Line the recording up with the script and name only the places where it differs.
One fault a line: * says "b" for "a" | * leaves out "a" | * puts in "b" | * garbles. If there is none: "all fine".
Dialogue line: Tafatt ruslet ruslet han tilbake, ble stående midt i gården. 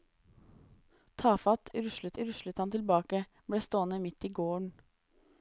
all fine